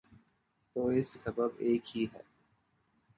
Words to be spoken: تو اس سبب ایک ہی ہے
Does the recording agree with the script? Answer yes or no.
yes